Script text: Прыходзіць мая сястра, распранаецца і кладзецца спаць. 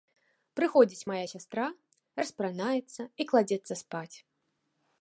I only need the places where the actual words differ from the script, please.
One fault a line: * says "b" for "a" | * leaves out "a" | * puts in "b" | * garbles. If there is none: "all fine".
all fine